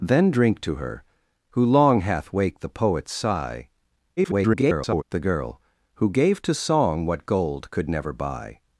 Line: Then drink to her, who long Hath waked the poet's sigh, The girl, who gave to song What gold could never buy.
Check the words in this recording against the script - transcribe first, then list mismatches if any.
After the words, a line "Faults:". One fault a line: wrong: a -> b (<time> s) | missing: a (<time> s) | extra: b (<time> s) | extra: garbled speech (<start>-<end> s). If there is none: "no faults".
Then drink to her, who long Hath waked the poet's sigh, [garbled] The girl, who gave to song What gold could never buy.
Faults:
extra: garbled speech (4.2-5.0 s)